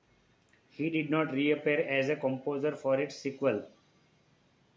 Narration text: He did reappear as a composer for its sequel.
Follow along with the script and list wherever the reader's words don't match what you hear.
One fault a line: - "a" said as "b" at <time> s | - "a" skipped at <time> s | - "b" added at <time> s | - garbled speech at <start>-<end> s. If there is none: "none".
- "not" added at 1.1 s